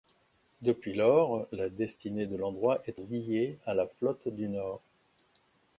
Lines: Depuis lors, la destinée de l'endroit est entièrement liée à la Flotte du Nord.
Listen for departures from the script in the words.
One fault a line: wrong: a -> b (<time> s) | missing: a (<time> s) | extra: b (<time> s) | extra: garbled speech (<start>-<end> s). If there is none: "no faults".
missing: entièrement (3.0 s)